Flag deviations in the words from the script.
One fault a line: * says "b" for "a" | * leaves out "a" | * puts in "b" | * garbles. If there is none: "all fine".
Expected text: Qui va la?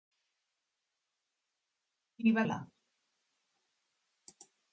all fine